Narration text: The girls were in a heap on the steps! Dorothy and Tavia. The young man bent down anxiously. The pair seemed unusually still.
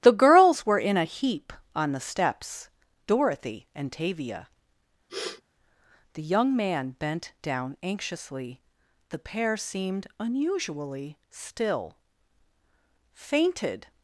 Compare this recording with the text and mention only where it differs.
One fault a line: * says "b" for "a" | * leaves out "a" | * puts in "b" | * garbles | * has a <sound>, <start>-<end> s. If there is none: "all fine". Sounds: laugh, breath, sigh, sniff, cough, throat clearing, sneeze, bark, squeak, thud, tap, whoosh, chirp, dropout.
* has a sniff, 5.1-5.4 s
* puts in "Fainted"